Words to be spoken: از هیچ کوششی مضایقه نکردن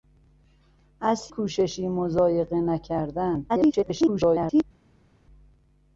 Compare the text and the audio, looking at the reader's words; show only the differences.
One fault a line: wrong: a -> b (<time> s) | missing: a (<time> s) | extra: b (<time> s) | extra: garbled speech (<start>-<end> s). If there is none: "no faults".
missing: هیچ (1.3 s)
extra: garbled speech (3.5-4.6 s)